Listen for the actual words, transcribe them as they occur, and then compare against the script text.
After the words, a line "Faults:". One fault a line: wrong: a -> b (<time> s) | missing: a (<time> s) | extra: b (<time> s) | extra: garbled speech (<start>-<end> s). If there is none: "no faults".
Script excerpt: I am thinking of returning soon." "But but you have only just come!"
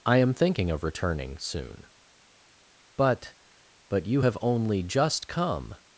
I am thinking of returning soon." "But but you have only just come!"
Faults:
no faults